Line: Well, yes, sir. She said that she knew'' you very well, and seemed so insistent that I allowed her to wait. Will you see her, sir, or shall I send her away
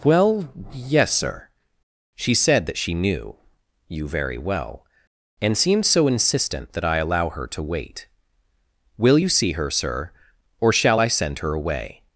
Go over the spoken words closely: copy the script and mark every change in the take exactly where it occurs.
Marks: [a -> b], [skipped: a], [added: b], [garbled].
Well, yes, sir. She said that she knew'' you very well, and seemed so insistent that I [allowed -> allow] her to wait. Will you see her, sir, or shall I send her away